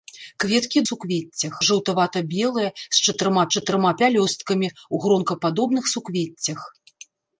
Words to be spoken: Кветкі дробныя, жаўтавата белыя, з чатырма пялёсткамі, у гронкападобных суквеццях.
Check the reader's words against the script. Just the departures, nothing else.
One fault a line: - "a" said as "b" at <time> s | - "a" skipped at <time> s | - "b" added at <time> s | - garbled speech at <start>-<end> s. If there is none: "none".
- "дробныя" said as "суквеццях" at 0.9 s
- "чатырма" added at 3.6 s